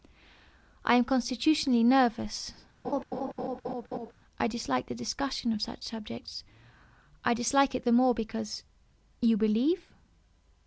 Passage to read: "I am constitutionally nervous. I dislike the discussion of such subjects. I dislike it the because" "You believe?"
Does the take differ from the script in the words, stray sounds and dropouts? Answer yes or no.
yes